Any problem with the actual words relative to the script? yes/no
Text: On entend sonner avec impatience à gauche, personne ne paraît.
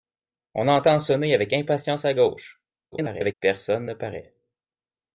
yes